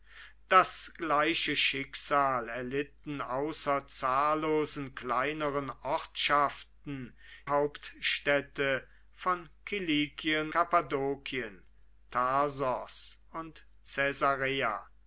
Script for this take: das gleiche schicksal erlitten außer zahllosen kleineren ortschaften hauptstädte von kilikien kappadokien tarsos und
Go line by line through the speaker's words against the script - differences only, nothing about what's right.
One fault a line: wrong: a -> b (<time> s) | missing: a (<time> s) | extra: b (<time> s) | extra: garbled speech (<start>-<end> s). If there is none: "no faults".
no faults